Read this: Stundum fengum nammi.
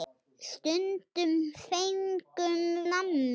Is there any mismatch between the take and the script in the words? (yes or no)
no